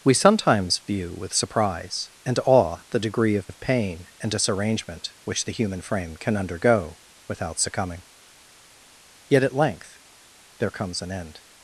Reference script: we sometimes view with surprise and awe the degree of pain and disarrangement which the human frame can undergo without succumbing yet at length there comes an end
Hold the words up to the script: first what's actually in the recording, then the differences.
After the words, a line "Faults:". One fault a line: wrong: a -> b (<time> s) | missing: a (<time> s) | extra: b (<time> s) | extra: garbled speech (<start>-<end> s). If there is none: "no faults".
we sometimes view with surprise and awe the degree of of pain and disarrangement which the human frame can undergo without succumbing yet at length there comes an end
Faults:
extra: of (3.4 s)